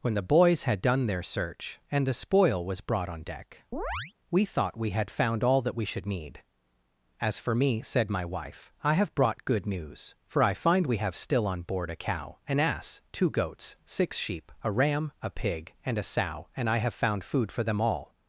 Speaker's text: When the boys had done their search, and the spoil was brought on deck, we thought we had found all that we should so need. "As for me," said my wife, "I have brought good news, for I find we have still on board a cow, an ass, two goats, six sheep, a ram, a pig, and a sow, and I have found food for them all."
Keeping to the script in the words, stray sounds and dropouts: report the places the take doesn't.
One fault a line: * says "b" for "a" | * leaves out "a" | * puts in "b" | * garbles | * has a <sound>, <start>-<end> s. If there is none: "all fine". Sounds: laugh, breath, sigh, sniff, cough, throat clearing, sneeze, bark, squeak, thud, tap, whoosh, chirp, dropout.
* has a chirp, 3.7-4.1 s
* leaves out "so"